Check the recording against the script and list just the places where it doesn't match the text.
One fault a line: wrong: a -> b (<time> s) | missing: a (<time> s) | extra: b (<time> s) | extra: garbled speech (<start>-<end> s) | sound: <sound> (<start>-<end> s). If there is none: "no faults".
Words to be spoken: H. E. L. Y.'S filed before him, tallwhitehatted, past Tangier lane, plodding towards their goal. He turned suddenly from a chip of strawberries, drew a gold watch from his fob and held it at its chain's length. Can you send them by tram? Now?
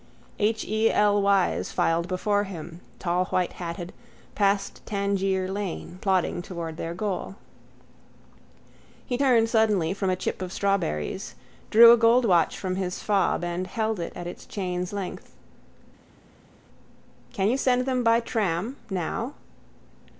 no faults